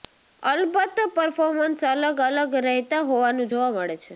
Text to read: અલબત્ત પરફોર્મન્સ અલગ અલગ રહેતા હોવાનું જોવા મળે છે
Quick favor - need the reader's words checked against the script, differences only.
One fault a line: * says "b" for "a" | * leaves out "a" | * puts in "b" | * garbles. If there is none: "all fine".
all fine